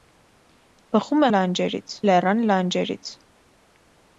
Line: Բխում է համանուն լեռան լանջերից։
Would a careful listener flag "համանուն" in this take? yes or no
yes